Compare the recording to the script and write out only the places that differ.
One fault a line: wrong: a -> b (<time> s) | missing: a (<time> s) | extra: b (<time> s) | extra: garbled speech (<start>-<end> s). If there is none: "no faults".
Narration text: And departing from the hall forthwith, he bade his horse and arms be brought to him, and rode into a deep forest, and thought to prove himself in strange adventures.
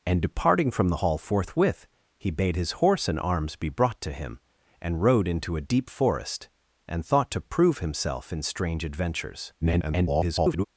extra: garbled speech (9.6-10.6 s)